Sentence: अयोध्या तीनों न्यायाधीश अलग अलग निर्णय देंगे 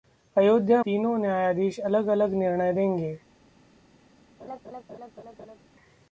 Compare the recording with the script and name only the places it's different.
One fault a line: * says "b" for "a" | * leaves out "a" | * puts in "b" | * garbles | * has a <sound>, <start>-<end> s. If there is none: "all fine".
* has a laugh, 4.4-5.6 s